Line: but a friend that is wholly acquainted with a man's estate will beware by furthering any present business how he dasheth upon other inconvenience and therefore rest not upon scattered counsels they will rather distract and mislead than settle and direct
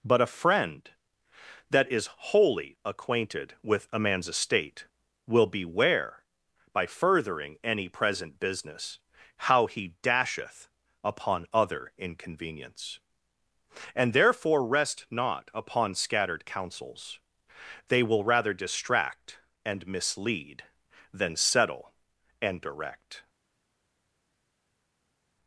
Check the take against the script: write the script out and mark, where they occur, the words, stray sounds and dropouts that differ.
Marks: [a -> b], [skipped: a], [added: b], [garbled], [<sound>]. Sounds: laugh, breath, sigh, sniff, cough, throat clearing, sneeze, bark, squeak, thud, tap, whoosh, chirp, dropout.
but a friend that is wholly acquainted with a man's estate will beware by furthering any present business how he dasheth upon other inconvenience and therefore rest not upon scattered counsels they will rather distract and mislead than settle and direct